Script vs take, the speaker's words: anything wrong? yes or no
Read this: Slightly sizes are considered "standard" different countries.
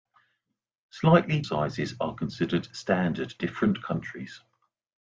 no